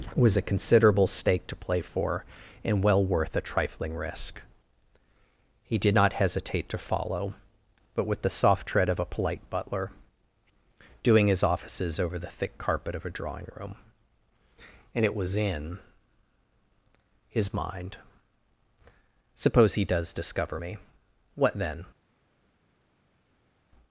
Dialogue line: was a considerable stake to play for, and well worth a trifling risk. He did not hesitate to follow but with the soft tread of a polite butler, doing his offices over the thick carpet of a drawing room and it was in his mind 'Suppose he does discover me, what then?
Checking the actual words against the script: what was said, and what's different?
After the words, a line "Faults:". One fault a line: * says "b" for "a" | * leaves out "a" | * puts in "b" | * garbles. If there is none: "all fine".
was a considerable stake to play for, and well worth a trifling risk. He did not hesitate to follow but with the soft tread of a polite butler, doing his offices over the thick carpet of a drawing room and it was in his mind 'Suppose he does discover me, what then?
Faults:
all fine